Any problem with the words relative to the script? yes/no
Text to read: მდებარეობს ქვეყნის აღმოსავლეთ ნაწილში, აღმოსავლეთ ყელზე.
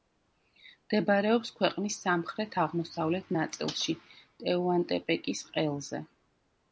yes